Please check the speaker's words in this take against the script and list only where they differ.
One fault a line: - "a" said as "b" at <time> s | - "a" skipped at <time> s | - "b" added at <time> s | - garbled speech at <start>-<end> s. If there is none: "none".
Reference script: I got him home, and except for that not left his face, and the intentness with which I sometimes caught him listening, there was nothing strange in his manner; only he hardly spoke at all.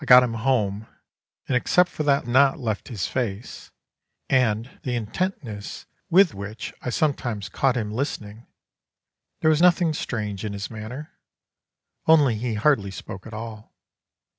none